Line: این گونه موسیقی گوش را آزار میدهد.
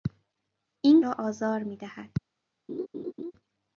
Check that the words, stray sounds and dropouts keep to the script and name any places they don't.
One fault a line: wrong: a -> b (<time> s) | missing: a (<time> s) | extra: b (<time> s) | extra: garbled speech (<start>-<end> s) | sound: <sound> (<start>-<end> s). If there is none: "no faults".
missing: گونه موسیقی گوش (1.0 s)
sound: laugh (2.7-3.3 s)